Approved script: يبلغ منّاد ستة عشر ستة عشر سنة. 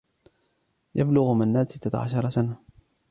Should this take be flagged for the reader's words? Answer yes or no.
yes